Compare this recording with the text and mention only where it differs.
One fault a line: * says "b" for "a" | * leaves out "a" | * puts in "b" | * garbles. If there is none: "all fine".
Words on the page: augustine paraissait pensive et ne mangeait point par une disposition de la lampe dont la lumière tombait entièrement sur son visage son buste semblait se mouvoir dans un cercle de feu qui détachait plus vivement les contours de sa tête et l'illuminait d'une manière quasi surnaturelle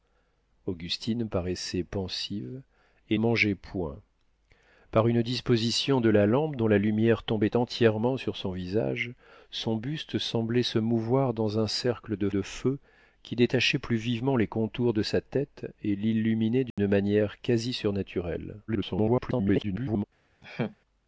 * leaves out "ne"
* puts in "de"
* garbles